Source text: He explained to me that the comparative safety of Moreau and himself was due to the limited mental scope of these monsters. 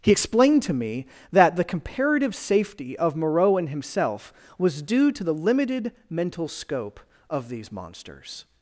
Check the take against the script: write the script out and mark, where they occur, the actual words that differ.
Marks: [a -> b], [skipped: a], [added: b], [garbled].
He explained to me that the comparative safety of Moreau and himself was due to the limited mental scope of these monsters.